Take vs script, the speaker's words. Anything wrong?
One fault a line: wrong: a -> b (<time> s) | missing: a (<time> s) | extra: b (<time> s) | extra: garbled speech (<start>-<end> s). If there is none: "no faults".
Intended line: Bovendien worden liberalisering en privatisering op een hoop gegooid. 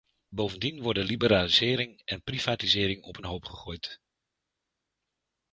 no faults